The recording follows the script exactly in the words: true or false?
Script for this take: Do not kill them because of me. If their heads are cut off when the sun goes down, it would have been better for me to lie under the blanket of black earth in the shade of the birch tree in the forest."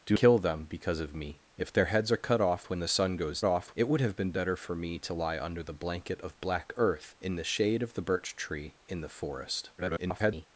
false